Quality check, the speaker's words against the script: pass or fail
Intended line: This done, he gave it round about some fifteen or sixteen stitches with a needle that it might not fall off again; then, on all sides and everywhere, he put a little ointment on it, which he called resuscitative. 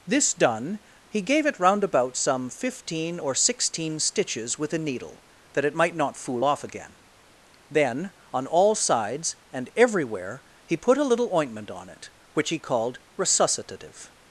fail